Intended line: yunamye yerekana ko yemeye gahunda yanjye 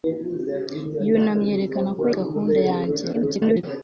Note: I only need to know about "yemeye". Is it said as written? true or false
false